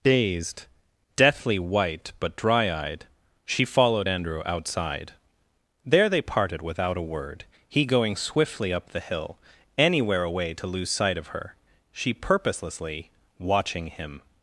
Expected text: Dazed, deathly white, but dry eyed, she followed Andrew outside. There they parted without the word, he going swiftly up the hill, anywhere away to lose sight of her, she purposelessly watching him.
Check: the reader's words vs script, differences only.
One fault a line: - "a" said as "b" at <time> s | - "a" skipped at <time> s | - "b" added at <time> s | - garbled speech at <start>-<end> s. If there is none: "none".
- "the" said as "a" at 7.0 s